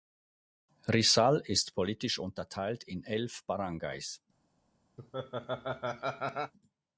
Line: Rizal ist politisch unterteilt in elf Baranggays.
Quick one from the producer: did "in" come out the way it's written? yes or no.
yes